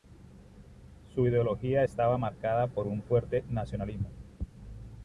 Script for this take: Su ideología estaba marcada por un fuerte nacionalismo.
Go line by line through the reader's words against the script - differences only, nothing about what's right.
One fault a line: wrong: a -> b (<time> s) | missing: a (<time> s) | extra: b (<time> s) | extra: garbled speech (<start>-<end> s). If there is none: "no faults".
no faults